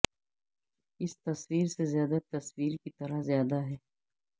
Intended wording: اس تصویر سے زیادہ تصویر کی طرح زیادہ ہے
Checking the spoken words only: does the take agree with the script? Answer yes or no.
yes